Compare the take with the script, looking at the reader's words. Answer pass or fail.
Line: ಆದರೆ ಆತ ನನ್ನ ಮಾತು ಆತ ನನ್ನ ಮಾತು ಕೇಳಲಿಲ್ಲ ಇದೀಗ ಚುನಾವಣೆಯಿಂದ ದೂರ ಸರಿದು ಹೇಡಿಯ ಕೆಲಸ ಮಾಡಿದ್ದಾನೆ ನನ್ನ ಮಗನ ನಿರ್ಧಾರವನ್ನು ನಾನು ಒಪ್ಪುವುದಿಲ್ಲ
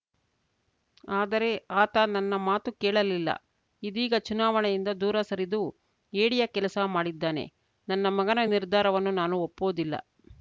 fail